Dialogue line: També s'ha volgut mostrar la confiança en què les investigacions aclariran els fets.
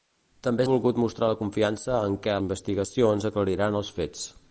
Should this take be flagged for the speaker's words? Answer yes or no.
yes